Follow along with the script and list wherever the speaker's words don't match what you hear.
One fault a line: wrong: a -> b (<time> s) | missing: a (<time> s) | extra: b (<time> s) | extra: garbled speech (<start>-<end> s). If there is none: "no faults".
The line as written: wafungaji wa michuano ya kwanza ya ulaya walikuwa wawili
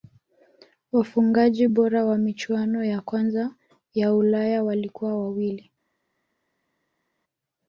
extra: bora (1.7 s)